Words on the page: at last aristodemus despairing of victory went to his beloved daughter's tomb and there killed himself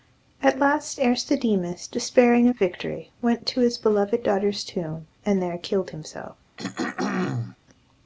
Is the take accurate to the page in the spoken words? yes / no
yes